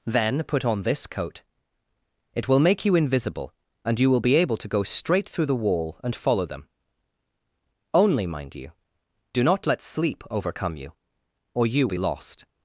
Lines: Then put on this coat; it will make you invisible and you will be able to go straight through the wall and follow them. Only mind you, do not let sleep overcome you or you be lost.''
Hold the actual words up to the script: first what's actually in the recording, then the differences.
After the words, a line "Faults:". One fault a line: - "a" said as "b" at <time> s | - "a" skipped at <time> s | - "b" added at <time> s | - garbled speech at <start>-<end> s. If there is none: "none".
Then put on this coat; it will make you invisible and you will be able to go straight through the wall and follow them. Only mind you, do not let sleep overcome you or you be lost.''
Faults:
none